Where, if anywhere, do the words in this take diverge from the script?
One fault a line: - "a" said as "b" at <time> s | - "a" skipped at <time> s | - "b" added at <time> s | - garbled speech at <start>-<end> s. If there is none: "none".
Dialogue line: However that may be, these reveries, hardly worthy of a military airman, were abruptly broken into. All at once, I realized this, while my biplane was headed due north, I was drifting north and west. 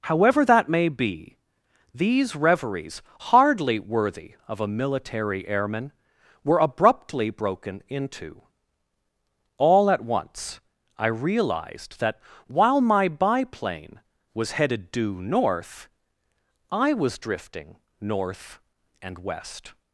- "this" said as "that" at 12.0 s